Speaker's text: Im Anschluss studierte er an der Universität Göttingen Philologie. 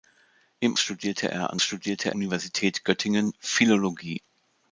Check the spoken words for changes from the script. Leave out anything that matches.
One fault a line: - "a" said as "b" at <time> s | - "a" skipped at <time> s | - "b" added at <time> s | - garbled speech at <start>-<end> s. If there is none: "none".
- "Anschluss" skipped at 0.8 s
- "der" said as "studierte" at 1.6 s